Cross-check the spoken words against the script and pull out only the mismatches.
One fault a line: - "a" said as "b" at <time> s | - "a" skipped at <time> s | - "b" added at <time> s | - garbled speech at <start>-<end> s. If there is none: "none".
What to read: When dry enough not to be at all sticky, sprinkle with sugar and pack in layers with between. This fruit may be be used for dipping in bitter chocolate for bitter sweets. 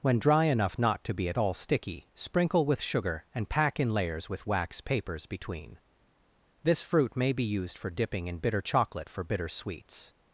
- "wax papers" added at 4.5 s
- "be" skipped at 7.4 s